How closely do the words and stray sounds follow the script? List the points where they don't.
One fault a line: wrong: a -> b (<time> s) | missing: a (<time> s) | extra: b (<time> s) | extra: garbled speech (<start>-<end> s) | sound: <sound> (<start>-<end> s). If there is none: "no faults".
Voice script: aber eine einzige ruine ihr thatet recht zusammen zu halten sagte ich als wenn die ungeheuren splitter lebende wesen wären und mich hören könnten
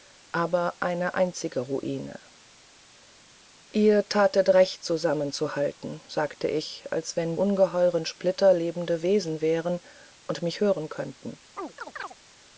missing: die (7.4 s)
sound: chirp (11.6-12.2 s)